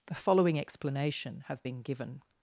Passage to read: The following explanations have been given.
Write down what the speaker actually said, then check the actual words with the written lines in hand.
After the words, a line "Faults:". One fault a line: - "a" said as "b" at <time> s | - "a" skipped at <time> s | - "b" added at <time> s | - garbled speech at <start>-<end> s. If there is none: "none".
The following explanation have been given.
Faults:
- "explanations" said as "explanation" at 0.6 s